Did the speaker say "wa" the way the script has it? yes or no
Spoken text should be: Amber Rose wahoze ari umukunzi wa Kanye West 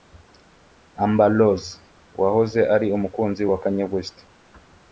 yes